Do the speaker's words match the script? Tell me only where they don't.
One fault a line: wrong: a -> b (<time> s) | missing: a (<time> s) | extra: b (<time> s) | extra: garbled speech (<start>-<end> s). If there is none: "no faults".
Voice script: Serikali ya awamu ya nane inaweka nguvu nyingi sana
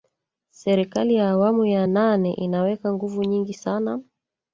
no faults